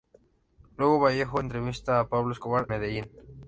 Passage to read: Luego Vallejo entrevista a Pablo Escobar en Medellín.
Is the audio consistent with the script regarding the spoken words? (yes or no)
no